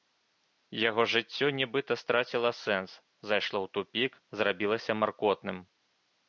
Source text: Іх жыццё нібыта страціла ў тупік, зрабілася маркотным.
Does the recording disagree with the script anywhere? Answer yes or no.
yes